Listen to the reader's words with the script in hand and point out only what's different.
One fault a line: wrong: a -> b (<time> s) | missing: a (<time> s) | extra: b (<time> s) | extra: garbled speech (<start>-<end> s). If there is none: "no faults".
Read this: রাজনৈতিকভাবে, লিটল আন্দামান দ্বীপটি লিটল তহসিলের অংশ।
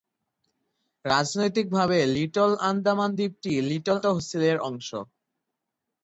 no faults